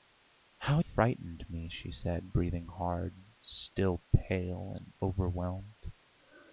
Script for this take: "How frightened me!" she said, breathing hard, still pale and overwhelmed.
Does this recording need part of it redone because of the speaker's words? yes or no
no